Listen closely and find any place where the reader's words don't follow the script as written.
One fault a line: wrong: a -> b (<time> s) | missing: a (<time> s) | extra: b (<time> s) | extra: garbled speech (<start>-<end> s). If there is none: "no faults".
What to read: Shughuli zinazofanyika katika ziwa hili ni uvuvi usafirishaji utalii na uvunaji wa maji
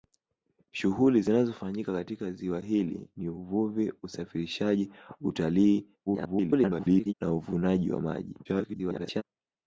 extra: garbled speech (6.1-7.1 s)
extra: garbled speech (8.4-9.2 s)